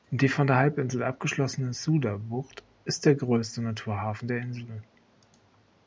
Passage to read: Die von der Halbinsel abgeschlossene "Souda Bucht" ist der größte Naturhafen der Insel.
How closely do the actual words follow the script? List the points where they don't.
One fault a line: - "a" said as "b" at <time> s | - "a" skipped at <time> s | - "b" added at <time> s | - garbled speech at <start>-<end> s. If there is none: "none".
none